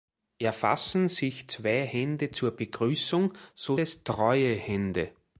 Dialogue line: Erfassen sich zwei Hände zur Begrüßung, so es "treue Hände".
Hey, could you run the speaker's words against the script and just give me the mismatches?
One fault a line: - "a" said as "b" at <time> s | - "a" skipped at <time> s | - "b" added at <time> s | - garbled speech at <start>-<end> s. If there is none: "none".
none